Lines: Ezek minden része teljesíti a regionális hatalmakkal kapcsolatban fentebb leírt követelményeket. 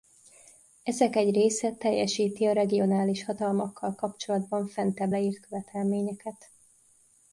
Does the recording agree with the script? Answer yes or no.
no